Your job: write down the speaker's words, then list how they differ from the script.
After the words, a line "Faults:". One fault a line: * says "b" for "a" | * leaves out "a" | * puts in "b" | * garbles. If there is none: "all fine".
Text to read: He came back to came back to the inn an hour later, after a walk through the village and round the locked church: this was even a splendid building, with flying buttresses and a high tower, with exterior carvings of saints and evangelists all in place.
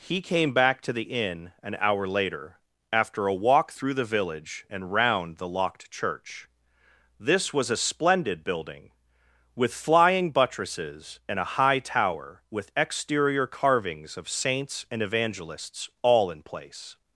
He came back to the inn an hour later, after a walk through the village and round the locked church: this was a splendid building, with flying buttresses and a high tower, with exterior carvings of saints and evangelists all in place.
Faults:
* leaves out "came back to"
* leaves out "even"